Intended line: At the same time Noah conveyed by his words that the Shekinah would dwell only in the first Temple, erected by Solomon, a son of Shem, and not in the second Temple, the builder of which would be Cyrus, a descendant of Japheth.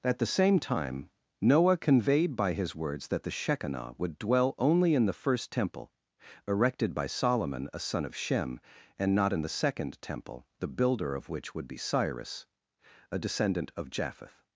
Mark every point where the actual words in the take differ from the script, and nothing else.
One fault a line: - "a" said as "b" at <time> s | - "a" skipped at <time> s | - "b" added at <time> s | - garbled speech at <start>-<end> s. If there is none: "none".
none